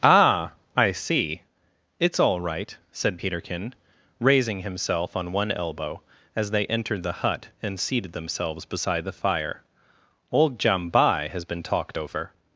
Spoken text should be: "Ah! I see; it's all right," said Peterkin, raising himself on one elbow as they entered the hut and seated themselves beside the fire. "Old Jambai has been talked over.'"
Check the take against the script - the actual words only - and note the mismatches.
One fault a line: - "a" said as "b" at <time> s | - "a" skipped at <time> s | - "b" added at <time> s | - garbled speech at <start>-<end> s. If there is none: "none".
none